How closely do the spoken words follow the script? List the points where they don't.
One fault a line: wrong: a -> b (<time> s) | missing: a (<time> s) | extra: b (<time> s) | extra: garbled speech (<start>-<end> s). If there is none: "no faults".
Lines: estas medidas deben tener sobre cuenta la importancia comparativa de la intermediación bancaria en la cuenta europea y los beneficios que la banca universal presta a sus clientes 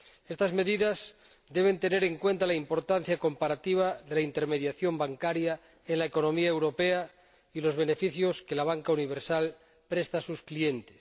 wrong: sobre -> en (2.0 s)
wrong: cuenta -> economía (6.0 s)